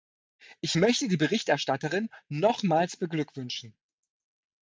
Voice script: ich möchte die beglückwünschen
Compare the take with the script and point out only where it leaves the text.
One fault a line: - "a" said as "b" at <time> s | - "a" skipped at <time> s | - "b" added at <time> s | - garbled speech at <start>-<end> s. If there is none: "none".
- "berichterstatterin nochmals" added at 1.2 s